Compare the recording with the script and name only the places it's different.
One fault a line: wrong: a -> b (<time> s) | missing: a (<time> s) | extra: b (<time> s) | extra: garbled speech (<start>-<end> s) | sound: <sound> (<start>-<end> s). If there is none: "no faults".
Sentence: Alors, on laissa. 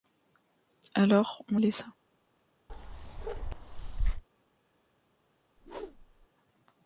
sound: bark (2.7-4.2 s)
sound: whoosh (5.6-6.3 s)